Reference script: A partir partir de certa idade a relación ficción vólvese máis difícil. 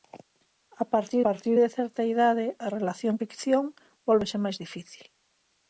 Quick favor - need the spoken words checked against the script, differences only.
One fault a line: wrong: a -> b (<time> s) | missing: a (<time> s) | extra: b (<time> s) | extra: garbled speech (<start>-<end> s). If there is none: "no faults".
no faults